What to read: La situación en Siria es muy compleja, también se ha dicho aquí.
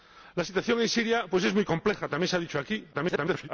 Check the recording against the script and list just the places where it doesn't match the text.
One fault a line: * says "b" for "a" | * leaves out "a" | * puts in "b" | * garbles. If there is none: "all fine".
* garbles